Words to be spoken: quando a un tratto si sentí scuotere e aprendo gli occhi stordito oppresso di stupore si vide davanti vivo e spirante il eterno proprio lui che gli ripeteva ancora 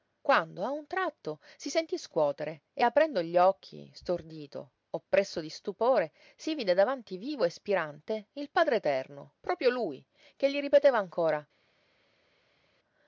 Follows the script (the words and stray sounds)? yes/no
no